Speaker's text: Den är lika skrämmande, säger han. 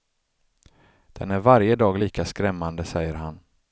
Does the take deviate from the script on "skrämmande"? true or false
false